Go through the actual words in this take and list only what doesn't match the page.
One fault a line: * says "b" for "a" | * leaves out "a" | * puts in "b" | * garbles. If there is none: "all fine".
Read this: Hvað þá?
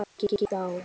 all fine